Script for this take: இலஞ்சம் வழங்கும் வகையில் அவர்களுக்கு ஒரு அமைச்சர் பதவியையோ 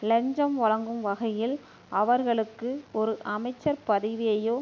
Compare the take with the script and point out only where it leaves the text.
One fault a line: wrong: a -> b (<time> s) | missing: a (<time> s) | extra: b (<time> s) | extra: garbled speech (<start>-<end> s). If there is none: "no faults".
no faults